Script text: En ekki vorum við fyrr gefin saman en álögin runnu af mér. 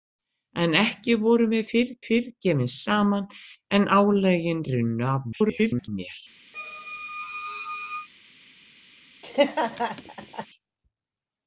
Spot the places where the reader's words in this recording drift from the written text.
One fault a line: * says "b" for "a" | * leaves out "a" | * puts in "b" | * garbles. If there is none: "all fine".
* puts in "fyrr"
* garbles